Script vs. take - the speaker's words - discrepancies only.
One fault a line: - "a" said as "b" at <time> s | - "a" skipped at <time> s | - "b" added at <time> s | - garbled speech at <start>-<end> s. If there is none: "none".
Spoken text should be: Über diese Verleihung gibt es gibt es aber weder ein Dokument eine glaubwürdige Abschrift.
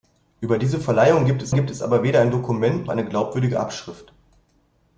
none